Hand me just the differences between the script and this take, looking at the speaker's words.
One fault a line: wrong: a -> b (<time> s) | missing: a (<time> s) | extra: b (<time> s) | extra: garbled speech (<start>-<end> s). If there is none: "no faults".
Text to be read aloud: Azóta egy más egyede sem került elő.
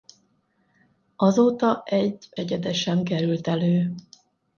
missing: más (2.3 s)